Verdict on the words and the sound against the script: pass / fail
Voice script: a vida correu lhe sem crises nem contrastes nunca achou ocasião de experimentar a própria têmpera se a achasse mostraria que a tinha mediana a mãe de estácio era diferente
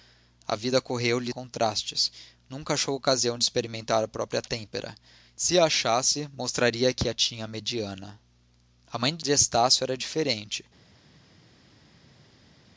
fail